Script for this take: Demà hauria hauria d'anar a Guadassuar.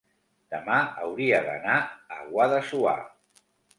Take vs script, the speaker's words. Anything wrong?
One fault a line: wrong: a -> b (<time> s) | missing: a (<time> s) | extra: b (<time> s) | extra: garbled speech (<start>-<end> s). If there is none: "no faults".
missing: hauria (1.4 s)